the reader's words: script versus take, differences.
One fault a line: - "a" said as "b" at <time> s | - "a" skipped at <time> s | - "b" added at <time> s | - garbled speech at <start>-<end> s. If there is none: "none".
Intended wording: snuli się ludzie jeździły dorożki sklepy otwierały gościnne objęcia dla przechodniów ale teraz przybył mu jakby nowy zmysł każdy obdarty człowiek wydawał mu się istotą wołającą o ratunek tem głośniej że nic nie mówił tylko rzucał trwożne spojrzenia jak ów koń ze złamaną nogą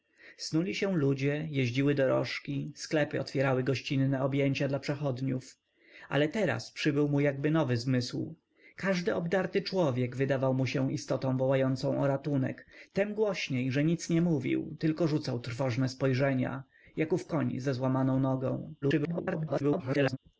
- garbled speech at 18.8-20.2 s